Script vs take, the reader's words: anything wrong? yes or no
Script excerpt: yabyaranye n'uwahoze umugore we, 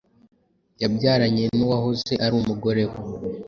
yes